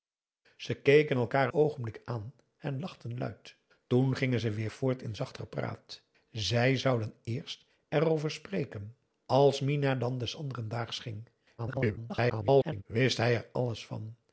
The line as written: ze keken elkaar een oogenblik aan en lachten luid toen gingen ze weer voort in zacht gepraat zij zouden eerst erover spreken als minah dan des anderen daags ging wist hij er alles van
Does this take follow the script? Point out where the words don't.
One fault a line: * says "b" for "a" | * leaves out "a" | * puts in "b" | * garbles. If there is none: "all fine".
* leaves out "een"
* garbles